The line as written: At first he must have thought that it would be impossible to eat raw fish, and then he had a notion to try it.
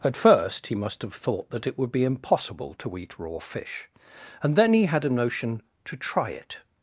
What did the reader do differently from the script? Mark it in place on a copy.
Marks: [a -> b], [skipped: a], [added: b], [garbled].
At first he must have thought that it would be impossible to eat raw fish, and then he had a notion to try it.